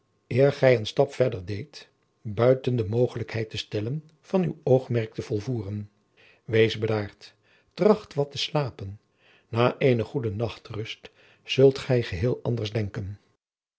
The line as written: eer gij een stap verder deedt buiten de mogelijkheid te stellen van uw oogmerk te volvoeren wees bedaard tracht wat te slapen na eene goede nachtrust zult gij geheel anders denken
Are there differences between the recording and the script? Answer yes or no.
no